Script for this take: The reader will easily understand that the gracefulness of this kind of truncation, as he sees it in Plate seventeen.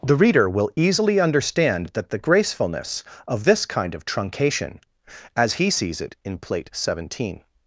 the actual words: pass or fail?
pass